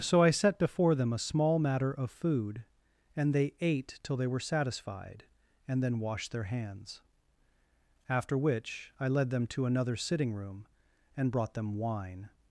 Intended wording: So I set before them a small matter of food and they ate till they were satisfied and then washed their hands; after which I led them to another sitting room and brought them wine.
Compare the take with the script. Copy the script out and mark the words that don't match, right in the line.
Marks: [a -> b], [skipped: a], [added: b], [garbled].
So I set before them a small matter of food and they ate till they were satisfied and then washed their hands; after which I led them to another sitting room and brought them wine.